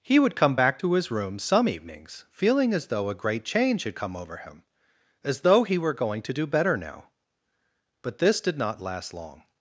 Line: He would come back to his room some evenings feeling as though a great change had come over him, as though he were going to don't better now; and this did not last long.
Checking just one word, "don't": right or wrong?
wrong